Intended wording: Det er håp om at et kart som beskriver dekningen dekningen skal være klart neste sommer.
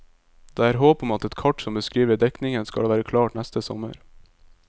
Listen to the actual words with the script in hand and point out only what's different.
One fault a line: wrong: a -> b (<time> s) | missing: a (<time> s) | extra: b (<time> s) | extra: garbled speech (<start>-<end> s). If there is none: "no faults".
missing: dekningen (2.7 s)